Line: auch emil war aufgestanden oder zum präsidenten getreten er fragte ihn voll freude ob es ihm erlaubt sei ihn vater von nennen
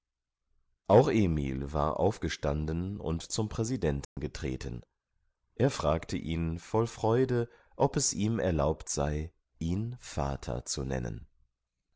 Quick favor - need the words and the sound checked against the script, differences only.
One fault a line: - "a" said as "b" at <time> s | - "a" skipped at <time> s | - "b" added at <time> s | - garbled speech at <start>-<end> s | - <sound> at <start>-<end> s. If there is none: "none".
- "oder" said as "und" at 3.0 s
- dropout at 4.0-4.2 s
- "von" said as "zu" at 10.6 s